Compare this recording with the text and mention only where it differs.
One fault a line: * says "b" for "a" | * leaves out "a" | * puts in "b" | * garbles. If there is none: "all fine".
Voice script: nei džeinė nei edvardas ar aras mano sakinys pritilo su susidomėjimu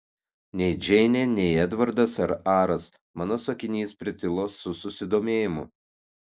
all fine